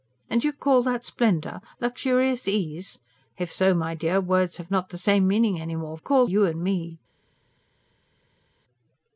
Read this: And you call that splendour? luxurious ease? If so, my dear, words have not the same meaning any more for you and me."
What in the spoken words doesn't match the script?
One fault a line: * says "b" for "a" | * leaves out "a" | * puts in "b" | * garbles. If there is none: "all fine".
* says "call" for "for"